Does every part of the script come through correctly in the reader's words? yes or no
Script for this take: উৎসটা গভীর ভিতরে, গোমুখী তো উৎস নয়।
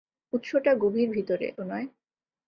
no